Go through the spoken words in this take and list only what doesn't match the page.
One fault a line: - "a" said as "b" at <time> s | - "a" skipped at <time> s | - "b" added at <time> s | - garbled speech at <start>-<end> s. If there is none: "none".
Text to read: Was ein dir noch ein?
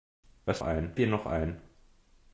none